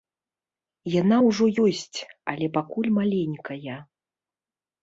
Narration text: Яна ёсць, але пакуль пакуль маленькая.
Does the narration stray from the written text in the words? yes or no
yes